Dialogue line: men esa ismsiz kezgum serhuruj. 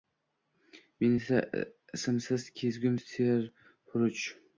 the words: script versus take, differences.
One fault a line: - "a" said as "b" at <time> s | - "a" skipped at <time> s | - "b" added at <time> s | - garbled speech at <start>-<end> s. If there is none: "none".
none